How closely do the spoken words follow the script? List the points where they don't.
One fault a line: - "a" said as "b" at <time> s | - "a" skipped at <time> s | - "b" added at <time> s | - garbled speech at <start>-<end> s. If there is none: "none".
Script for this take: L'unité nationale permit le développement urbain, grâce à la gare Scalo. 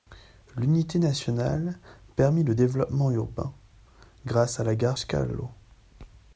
none